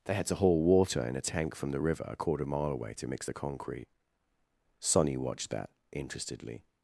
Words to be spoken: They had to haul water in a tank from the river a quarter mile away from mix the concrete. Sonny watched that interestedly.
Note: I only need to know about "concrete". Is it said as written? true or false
true